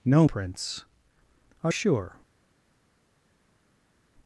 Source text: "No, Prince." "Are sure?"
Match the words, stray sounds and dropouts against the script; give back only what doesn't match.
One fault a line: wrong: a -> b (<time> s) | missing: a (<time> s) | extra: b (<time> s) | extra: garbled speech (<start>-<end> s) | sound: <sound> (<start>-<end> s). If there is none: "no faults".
no faults